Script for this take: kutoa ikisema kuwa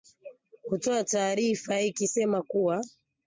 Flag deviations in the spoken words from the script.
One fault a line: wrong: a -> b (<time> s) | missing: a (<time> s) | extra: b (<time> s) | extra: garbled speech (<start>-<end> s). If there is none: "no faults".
extra: taarifa (1.0 s)